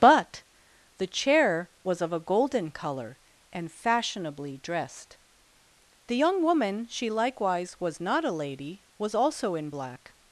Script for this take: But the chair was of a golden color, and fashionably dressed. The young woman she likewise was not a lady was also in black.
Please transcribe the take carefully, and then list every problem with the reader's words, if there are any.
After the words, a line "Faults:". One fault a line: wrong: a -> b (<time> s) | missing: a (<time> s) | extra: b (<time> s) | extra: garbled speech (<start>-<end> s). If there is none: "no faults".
But the chair was of a golden color, and fashionably dressed. The young woman she likewise was not a lady was also in black.
Faults:
no faults